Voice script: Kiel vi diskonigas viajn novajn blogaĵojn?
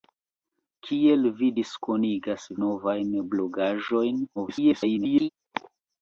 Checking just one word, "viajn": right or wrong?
wrong